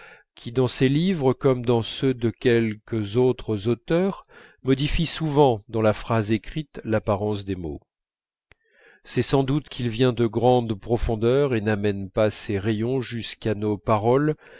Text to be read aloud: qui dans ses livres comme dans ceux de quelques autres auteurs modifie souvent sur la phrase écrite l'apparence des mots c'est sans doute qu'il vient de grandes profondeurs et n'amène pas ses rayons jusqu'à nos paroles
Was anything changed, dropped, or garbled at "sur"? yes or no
yes